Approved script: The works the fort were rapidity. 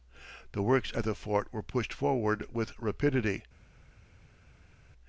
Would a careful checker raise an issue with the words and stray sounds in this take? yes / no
yes